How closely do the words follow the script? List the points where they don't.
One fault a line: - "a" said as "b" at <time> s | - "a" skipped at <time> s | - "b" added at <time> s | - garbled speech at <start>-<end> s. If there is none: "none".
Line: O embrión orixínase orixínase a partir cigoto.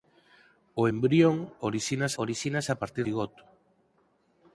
none